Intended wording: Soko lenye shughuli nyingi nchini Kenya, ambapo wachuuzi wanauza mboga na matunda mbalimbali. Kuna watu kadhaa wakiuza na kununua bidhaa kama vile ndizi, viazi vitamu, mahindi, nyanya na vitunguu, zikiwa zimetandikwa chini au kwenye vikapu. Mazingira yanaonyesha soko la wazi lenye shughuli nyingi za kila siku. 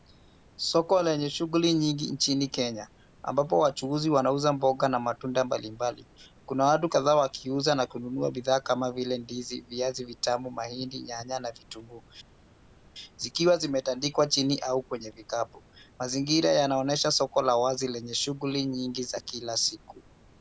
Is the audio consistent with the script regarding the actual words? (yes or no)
yes